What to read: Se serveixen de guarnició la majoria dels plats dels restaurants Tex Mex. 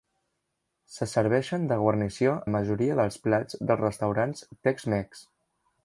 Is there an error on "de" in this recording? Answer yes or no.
no